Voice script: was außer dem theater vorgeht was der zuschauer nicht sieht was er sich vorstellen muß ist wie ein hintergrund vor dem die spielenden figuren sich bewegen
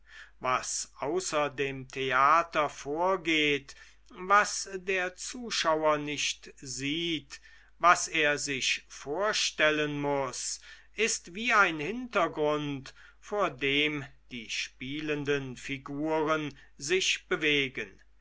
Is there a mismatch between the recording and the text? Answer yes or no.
no